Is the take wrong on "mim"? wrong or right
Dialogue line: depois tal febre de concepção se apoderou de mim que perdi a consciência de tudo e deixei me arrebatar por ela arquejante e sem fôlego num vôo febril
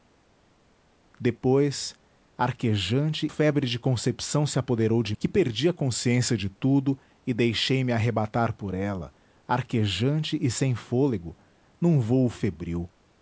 wrong